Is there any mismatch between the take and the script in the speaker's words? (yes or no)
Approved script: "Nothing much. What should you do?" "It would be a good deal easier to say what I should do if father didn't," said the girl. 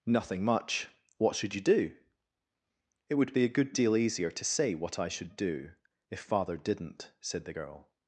no